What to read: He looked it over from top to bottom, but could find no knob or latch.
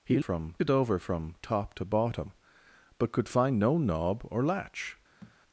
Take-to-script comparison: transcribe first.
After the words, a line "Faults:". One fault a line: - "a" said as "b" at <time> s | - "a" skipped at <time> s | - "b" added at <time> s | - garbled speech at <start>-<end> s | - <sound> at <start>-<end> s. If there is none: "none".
He from it over from top to bottom, but could find no knob or latch.
Faults:
- "looked" said as "from" at 0.2 s
- thud at 5.2-5.4 s